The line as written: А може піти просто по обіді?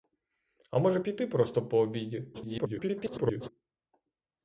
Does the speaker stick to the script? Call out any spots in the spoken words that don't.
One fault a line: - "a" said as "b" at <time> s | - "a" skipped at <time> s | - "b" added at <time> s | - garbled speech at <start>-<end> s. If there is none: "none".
- garbled speech at 2.3-3.5 s